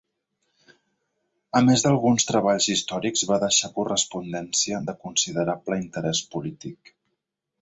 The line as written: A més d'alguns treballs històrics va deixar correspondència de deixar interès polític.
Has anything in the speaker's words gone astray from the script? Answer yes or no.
yes